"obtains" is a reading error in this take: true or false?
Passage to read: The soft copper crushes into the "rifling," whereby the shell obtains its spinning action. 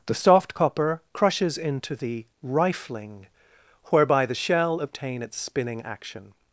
true